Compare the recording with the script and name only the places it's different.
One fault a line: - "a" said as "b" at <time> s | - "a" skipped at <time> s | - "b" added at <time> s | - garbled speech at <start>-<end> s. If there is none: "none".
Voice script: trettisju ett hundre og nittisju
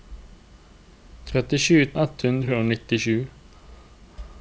none